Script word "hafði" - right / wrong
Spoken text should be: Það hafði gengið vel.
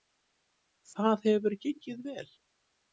wrong